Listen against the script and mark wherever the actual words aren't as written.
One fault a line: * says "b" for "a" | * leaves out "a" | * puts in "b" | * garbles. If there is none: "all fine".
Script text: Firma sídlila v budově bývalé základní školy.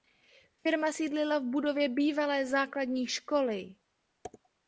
all fine